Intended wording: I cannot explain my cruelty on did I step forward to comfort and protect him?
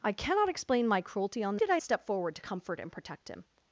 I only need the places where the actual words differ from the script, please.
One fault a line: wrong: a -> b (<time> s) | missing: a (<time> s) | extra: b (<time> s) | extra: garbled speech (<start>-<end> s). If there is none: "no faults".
no faults